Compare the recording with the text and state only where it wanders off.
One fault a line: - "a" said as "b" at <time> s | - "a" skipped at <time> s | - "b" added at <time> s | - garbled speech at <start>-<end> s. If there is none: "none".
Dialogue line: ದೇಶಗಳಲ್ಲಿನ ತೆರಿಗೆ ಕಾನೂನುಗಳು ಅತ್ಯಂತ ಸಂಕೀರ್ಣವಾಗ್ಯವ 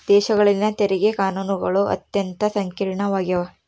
none